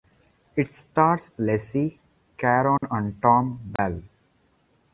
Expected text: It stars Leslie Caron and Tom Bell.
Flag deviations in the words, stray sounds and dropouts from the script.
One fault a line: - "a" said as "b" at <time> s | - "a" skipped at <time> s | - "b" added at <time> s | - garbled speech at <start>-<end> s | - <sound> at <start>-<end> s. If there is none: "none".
- dropout at 2.8-2.8 s
- dropout at 3.8-3.8 s